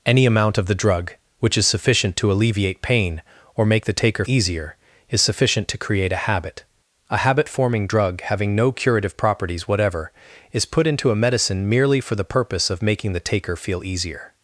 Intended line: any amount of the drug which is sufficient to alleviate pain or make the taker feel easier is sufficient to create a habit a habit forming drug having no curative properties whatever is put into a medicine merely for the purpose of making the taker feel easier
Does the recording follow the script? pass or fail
fail